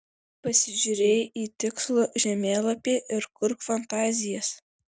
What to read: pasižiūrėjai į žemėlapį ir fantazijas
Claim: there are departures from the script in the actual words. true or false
true